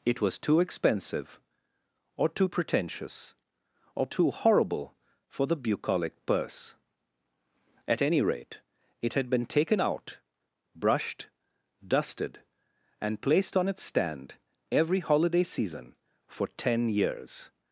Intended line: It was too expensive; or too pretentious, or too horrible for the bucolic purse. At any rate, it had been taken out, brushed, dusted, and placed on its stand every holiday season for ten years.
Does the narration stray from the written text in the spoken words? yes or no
no